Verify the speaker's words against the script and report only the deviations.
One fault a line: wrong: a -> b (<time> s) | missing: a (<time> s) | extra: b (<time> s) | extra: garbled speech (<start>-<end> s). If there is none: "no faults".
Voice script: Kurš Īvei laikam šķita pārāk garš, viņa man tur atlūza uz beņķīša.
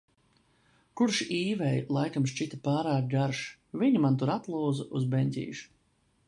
no faults